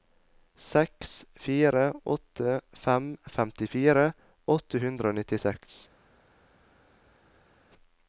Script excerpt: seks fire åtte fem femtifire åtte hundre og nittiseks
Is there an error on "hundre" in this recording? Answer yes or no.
no